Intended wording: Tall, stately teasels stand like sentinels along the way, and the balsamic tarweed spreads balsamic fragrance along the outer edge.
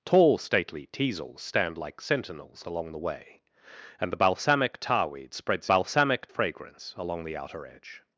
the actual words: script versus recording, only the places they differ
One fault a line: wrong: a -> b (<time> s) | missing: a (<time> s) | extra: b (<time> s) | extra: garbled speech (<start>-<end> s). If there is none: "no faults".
no faults